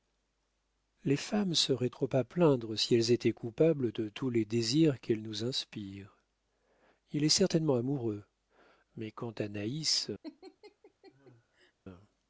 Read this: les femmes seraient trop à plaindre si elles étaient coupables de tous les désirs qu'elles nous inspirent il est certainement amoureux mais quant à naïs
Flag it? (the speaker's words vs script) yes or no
no